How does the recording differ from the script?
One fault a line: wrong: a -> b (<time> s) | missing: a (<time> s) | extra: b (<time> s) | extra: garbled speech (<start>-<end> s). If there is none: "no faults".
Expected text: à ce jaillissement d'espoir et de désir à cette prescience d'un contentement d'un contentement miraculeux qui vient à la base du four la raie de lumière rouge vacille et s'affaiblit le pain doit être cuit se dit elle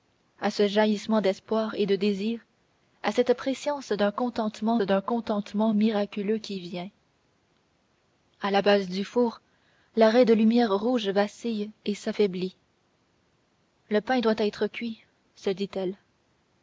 no faults